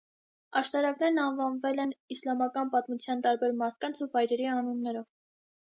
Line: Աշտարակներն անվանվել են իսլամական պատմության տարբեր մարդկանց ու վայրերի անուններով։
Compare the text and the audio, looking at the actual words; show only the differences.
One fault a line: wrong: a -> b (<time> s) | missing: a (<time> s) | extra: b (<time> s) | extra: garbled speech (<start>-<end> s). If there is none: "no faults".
no faults